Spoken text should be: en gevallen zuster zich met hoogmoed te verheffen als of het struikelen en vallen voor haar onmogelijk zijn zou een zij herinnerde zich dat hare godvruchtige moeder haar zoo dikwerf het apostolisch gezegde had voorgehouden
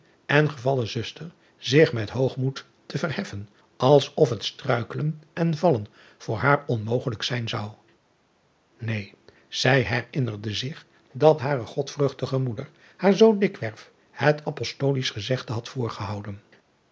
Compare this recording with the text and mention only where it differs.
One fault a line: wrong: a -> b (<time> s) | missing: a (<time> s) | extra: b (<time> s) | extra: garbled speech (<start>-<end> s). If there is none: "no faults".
no faults